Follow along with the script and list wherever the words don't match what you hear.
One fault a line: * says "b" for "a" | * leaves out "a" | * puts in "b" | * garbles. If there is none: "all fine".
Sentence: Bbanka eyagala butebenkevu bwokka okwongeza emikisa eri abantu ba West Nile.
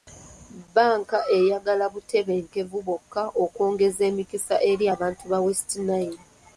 all fine